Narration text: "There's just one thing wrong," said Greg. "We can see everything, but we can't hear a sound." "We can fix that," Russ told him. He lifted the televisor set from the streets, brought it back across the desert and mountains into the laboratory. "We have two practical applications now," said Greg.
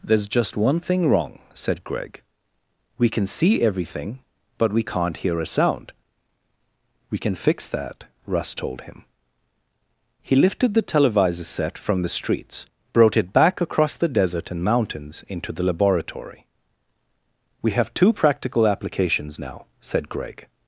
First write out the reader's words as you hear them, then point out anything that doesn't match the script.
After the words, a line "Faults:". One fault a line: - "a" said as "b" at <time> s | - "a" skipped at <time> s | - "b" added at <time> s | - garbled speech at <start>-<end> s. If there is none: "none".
"There's just one thing wrong," said Greg. "We can see everything, but we can't hear a sound." "We can fix that," Russ told him. He lifted the televisor set from the streets, brought it back across the desert and mountains into the laboratory. "We have two practical applications now," said Greg.
Faults:
none